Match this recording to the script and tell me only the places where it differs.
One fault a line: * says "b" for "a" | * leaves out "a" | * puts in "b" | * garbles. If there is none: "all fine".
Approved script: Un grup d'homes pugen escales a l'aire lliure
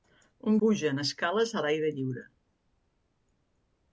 * leaves out "grup d'homes"